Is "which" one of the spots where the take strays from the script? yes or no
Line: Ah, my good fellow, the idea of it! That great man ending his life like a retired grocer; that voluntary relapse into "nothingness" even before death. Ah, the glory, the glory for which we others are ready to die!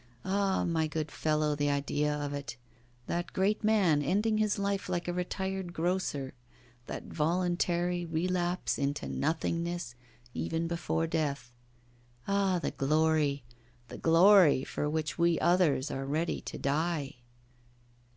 no